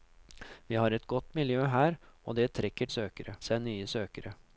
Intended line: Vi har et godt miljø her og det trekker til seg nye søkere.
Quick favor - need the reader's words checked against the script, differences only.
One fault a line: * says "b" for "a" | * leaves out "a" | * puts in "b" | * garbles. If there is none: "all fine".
* says "søkere" for "til"